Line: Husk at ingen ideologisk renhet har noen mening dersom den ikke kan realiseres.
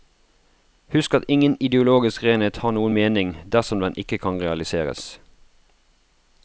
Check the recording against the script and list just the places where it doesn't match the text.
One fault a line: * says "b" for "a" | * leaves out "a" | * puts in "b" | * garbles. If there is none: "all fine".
all fine